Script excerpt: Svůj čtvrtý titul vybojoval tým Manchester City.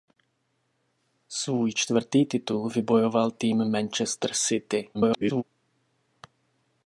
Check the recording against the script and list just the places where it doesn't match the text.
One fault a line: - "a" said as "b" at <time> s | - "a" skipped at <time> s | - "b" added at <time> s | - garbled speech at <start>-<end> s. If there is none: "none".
- garbled speech at 4.9-5.4 s